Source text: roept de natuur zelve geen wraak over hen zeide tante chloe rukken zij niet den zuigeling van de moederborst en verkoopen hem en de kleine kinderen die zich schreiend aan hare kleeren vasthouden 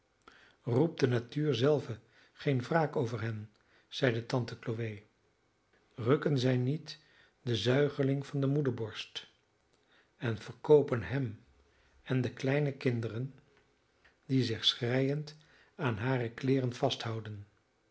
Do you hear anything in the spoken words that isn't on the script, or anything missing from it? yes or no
no